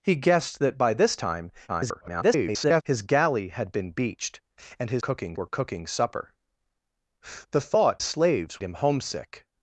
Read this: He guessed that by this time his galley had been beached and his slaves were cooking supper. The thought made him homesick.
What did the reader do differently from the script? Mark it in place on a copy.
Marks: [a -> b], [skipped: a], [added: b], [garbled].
He guessed that by this time [garbled] his galley had been beached and his [slaves -> cooking] were cooking supper. The thought [made -> slaves] him homesick.